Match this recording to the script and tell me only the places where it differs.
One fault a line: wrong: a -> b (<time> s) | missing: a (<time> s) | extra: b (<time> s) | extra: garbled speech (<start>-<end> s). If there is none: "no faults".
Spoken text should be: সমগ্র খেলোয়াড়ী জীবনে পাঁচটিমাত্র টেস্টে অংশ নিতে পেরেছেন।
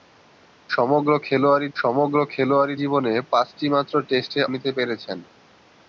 extra: সমগ্র খেলোয়াড়ী (1.8 s)
missing: অংশ (4.4 s)